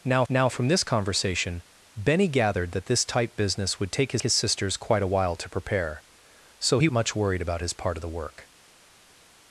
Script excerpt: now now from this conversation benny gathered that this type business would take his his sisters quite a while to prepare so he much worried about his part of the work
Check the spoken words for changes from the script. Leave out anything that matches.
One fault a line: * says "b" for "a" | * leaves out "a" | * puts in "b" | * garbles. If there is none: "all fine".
all fine